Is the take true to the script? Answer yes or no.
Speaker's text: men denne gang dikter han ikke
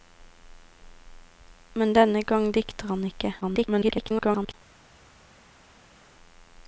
no